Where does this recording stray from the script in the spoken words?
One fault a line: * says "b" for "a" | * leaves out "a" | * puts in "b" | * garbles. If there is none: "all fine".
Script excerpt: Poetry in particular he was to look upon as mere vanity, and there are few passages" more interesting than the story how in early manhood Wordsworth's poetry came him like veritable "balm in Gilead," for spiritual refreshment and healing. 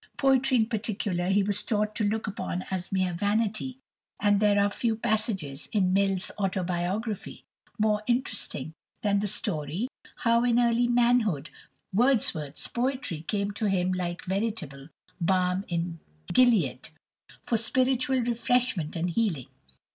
* puts in "taught"
* puts in "in Mill's Autobiography"
* puts in "to"